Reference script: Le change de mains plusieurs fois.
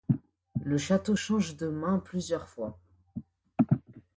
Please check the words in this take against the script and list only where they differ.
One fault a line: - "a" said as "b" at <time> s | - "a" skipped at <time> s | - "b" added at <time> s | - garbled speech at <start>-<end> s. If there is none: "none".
- "château" added at 0.8 s